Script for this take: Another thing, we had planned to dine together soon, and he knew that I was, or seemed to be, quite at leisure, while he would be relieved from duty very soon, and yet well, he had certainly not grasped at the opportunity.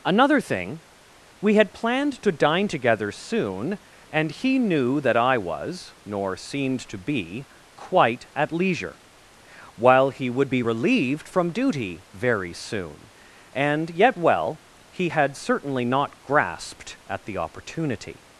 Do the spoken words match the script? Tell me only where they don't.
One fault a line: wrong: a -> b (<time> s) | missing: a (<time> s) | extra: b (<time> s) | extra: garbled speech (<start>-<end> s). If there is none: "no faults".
wrong: or -> nor (6.0 s)